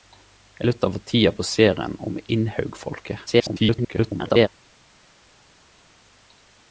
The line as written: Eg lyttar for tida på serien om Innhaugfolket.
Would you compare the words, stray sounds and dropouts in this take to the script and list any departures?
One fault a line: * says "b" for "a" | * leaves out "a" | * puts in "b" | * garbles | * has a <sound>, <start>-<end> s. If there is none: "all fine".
* garbles